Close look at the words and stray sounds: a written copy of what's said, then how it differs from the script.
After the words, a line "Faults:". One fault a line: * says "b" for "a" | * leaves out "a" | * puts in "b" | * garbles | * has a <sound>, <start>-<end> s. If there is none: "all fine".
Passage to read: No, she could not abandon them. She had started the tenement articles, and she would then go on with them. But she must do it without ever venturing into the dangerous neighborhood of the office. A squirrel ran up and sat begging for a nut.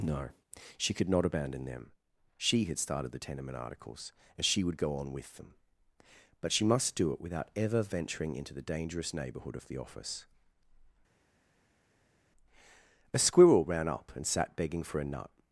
No, she could not abandon them. She had started the tenement articles, and she would go on with them. But she must do it without ever venturing into the dangerous neighborhood of the office. A squirrel ran up and sat begging for a nut.
Faults:
* leaves out "then"